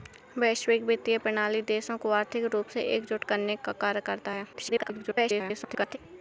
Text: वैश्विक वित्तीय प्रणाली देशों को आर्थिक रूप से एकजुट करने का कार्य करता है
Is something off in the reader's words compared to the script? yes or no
yes